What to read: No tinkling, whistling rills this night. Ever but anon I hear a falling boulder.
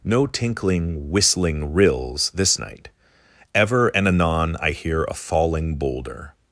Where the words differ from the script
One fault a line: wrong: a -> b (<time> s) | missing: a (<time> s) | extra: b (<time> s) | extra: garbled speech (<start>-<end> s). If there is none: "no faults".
wrong: but -> and (3.9 s)